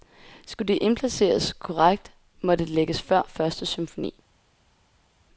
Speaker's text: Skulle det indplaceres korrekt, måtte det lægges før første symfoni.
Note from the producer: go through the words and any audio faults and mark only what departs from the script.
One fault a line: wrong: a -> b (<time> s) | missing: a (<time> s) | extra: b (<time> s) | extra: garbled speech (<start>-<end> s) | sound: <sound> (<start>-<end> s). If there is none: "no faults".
missing: det (2.6 s)